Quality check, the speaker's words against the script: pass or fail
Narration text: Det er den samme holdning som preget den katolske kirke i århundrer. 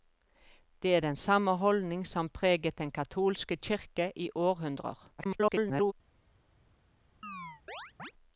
fail